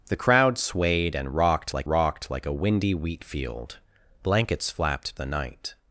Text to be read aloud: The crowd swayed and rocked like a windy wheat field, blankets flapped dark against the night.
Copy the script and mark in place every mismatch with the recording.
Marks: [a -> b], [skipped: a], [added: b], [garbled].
The crowd swayed and rocked like [added: rocked like] a windy wheat field, blankets flapped [skipped: dark against] the night.